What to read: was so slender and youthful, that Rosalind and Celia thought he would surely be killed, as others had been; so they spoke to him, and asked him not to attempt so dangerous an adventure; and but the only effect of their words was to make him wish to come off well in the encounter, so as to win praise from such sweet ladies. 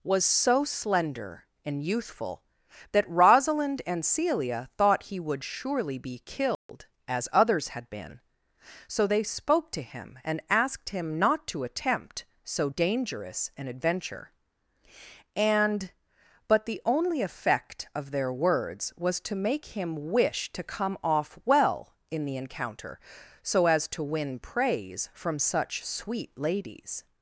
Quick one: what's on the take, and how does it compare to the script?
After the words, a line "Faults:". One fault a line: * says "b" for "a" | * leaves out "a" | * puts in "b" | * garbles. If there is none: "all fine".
was so slender and youthful, that Rosalind and Celia thought he would surely be killed, as others had been; so they spoke to him, and asked him not to attempt so dangerous an adventure; and but the only effect of their words was to make him wish to come off well in the encounter, so as to win praise from such sweet ladies.
Faults:
all fine